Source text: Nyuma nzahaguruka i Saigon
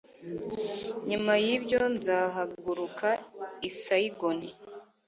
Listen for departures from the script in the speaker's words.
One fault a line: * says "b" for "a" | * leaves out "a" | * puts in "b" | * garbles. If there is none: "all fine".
* puts in "yibyo"